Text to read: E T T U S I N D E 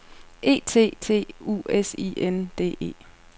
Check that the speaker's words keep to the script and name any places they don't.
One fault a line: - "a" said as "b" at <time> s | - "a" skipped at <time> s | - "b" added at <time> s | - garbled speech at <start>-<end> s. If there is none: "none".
none